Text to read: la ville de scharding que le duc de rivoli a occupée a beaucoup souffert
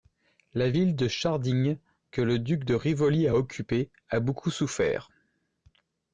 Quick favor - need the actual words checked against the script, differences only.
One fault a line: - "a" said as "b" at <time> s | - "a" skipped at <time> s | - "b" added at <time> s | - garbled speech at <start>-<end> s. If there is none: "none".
none